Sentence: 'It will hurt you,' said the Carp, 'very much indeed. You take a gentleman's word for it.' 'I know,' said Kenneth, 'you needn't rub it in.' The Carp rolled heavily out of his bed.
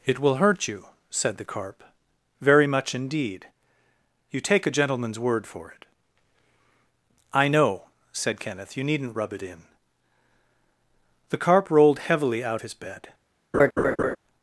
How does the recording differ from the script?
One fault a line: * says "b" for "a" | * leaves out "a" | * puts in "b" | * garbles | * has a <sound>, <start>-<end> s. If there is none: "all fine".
* leaves out "of"
* has a laugh, 13.5-14.2 s